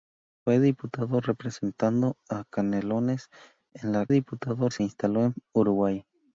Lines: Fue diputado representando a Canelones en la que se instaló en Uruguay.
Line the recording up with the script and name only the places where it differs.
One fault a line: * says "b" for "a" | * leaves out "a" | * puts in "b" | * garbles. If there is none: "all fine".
* says "diputado" for "que"